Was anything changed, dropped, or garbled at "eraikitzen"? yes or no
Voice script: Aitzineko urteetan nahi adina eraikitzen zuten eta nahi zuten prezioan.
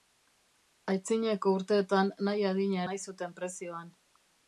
yes